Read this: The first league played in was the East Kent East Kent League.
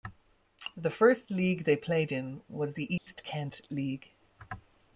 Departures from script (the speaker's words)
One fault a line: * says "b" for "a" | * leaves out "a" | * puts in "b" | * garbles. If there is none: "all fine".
* puts in "they"
* leaves out "East Kent"